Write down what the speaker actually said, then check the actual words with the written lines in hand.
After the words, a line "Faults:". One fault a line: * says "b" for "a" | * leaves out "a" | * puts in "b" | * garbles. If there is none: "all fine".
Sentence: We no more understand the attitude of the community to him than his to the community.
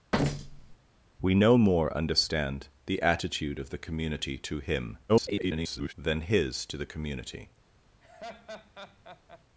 We no more understand the attitude of the community to him [garbled] than his to the community.
Faults:
* garbles